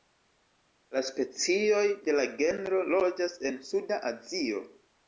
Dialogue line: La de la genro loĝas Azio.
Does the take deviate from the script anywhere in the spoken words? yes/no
yes